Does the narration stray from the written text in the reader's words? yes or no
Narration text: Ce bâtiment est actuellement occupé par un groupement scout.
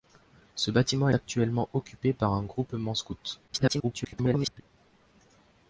yes